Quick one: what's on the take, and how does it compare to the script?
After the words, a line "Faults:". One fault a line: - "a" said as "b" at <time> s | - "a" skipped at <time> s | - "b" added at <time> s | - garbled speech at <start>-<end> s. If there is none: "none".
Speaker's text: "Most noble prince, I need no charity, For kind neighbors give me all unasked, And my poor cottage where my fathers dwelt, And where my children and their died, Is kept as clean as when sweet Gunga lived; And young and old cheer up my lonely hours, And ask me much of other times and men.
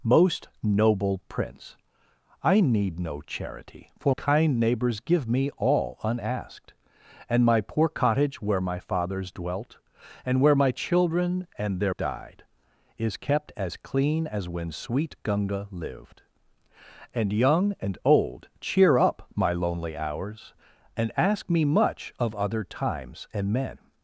"Most noble prince, I need no charity, For kind neighbors give me all unasked, And my poor cottage where my fathers dwelt, And where my children and their died, Is kept as clean as when sweet Gunga lived; And young and old cheer up my lonely hours, And ask me much of other times and men.
Faults:
none